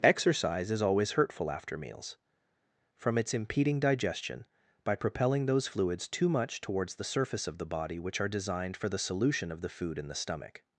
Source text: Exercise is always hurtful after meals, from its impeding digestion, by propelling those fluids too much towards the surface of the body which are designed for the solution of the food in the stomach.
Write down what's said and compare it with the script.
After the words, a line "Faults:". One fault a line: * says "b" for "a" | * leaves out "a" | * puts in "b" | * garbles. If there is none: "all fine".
Exercise is always hurtful after meals, from its impeding digestion, by propelling those fluids too much towards the surface of the body which are designed for the solution of the food in the stomach.
Faults:
all fine